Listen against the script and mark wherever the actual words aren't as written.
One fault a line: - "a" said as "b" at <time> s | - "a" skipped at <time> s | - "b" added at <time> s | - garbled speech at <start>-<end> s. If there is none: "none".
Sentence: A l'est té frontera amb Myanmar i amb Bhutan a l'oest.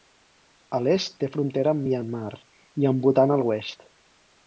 none